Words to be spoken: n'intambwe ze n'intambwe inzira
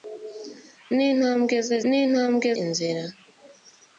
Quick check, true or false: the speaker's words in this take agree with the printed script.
true